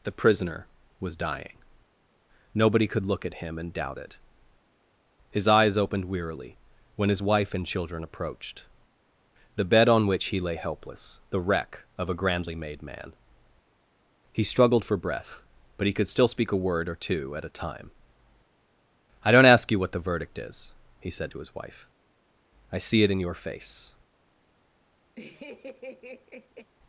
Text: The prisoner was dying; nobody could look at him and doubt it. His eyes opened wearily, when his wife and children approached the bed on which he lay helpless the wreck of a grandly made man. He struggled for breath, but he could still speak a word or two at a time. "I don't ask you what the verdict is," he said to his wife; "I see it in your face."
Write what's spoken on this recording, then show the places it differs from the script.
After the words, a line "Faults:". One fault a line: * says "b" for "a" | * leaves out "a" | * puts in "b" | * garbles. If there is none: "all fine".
The prisoner was dying; nobody could look at him and doubt it. His eyes opened wearily, when his wife and children approached the bed on which he lay helpless the wreck of a grandly made man. He struggled for breath, but he could still speak a word or two at a time. "I don't ask you what the verdict is," he said to his wife; "I see it in your face."
Faults:
all fine